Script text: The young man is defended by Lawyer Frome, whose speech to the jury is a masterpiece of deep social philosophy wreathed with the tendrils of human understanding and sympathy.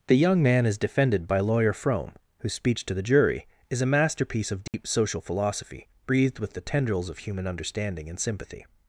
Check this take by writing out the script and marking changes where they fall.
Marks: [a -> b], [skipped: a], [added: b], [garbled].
The young man is defended by Lawyer Frome, whose speech to the jury is a masterpiece of deep social philosophy [wreathed -> breathed] with the tendrils of human understanding and sympathy.